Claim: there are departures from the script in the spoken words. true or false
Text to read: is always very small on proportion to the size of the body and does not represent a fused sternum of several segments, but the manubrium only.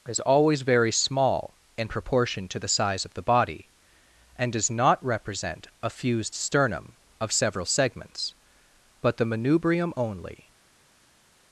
true